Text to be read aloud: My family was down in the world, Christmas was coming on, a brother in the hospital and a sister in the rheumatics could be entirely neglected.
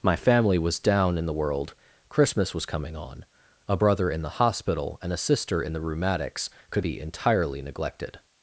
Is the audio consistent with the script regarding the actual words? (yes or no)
yes